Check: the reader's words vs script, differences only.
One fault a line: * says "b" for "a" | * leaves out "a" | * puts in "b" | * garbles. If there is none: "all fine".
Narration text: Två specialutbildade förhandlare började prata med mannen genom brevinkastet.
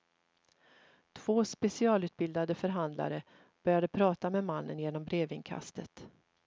all fine